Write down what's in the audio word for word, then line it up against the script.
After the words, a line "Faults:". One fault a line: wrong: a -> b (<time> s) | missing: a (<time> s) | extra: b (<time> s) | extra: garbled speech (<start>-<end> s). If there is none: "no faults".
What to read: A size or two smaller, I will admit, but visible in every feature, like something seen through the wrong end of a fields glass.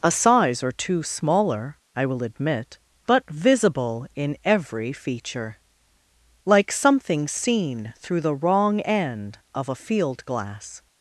A size or two smaller, I will admit, but visible in every feature, like something seen through the wrong end of a field glass.
Faults:
wrong: fields -> field (9.7 s)